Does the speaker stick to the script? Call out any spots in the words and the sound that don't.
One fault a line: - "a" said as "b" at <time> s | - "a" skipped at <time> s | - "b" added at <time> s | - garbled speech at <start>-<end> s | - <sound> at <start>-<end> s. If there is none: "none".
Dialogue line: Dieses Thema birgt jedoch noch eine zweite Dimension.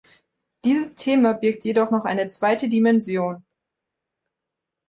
none